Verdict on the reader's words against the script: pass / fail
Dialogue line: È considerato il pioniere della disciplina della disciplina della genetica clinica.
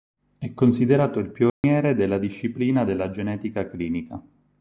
fail